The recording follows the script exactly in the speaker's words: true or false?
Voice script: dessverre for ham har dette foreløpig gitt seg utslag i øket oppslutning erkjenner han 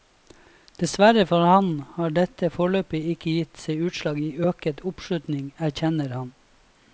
false